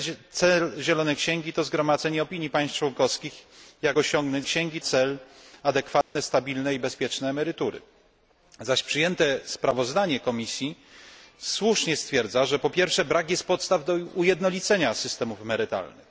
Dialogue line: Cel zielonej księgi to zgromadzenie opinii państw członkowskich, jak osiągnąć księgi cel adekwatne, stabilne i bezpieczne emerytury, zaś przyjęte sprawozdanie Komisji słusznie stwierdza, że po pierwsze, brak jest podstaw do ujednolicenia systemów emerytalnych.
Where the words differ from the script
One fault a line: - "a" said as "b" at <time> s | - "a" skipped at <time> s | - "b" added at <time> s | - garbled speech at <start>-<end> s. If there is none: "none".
none